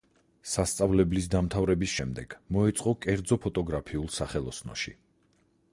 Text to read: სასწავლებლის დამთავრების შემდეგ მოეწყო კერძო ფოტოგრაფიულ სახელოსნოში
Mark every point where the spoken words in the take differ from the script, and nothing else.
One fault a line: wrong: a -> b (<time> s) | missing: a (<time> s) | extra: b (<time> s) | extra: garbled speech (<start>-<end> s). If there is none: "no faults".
no faults